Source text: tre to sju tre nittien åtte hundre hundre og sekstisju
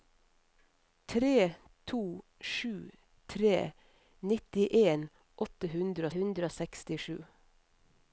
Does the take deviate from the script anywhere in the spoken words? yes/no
no